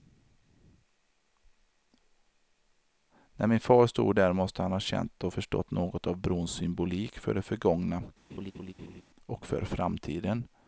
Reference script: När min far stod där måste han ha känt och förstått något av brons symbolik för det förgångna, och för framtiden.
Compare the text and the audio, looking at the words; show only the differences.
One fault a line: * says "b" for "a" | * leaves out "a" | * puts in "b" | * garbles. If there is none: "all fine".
all fine